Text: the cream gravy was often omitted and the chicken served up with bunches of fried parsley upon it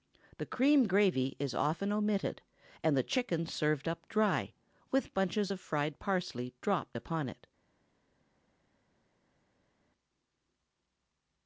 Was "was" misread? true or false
true